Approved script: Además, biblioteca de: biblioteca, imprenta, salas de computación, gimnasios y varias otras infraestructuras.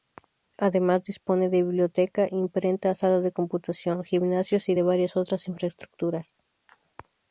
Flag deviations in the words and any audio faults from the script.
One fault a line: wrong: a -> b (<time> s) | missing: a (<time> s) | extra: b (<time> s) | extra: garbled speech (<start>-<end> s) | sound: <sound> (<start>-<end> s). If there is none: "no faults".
wrong: biblioteca -> dispone (1.0 s)
extra: de (4.7 s)